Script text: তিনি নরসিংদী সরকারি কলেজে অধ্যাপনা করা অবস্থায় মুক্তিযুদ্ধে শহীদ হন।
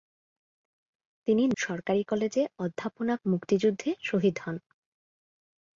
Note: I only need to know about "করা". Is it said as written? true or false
false